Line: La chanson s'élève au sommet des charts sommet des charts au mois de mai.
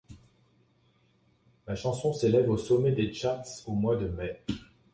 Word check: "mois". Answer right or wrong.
right